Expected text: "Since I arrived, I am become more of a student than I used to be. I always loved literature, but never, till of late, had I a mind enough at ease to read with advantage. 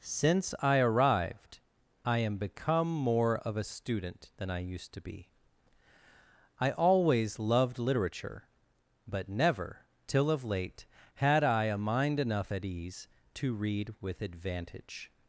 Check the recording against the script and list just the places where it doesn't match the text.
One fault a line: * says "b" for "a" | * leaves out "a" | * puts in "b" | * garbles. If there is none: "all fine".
all fine